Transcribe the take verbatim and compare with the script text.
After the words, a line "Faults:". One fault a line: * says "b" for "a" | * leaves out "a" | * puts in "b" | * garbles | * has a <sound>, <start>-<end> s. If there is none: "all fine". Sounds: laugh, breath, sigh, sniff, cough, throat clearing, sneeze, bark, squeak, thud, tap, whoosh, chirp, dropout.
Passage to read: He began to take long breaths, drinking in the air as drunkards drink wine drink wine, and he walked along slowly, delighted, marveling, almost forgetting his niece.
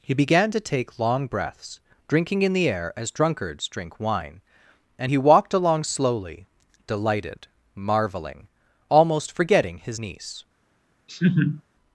He began to take long breaths, drinking in the air as drunkards drink wine, and he walked along slowly, delighted, marveling, almost forgetting his niece.
Faults:
* leaves out "drink wine"
* has a laugh, 11.1-11.6 s